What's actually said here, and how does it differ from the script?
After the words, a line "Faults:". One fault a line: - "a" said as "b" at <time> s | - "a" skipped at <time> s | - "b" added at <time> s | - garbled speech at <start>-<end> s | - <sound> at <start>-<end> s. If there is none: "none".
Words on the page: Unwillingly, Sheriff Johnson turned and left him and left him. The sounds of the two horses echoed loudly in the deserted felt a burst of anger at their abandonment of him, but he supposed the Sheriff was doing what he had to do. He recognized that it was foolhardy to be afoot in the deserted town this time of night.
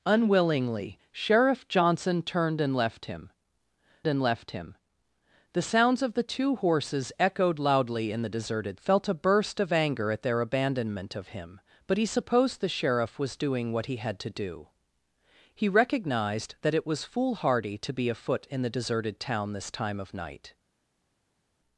Unwillingly, Sheriff Johnson turned and left him and left him. The sounds of the two horses echoed loudly in the deserted felt a burst of anger at their abandonment of him, but he supposed the Sheriff was doing what he had to do. He recognized that it was foolhardy to be afoot in the deserted town this time of night.
Faults:
none